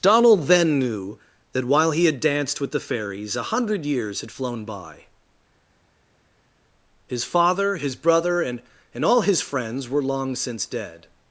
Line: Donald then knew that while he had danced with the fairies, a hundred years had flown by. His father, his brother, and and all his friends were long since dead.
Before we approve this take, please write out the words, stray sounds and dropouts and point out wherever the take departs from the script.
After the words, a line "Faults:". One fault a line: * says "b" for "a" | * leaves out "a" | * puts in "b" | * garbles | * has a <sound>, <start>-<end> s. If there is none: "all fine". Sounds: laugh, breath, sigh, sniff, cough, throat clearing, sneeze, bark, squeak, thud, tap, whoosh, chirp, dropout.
Donald then knew that while he had danced with the fairies, a hundred years had flown by. His father, his brother, and and all his friends were long since dead.
Faults:
all fine